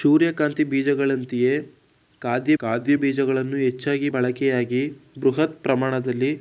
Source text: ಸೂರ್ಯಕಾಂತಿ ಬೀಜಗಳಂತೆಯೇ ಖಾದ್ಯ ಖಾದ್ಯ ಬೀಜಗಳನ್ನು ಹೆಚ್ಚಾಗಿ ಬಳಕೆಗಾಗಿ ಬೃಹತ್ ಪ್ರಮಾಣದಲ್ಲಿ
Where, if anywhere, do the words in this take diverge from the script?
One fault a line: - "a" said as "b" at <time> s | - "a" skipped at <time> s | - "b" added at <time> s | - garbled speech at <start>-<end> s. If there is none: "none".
none